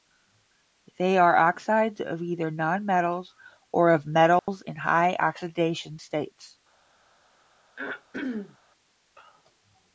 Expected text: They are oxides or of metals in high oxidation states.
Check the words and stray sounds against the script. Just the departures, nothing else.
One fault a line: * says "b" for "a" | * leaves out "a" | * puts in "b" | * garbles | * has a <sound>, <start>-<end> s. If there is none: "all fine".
* puts in "of either nonmetals"
* has a dropout, 4.4-4.5 s
* has a throat clearing, 7.8-8.6 s